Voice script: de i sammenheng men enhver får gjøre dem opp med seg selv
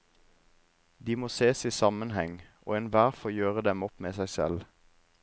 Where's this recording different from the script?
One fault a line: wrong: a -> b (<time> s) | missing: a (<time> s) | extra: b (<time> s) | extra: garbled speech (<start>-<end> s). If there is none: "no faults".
extra: må ses (1.1 s)
wrong: men -> og (2.6 s)